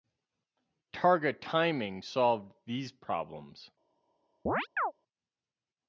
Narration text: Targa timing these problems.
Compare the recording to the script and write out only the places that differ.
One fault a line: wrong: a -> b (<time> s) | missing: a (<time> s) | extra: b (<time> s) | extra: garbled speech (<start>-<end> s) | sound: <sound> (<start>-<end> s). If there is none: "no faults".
extra: solved (2.0 s)
sound: chirp (4.5-4.9 s)